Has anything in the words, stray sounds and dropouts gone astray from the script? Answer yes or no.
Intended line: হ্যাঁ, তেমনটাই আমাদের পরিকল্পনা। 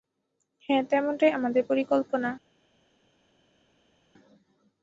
no